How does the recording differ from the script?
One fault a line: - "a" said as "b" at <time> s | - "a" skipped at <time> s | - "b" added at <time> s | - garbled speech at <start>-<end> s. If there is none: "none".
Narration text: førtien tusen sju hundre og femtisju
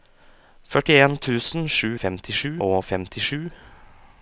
- "hundre" said as "femtisju" at 2.0 s